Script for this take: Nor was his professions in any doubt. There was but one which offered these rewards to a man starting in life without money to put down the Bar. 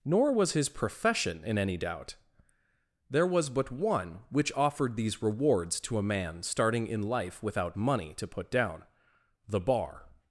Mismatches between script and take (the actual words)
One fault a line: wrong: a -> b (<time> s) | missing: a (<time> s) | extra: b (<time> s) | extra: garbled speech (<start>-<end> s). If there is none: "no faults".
wrong: professions -> profession (0.7 s)